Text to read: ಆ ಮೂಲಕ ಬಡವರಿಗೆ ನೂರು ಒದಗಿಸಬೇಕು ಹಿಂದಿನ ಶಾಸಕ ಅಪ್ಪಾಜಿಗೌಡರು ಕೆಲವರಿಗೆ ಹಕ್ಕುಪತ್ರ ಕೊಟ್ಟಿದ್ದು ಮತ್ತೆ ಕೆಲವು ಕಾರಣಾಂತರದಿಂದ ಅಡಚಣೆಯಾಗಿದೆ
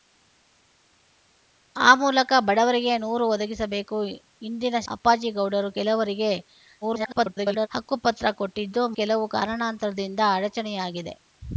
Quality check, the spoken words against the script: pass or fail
fail